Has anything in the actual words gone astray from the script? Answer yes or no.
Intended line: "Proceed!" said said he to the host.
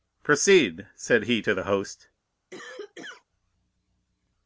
yes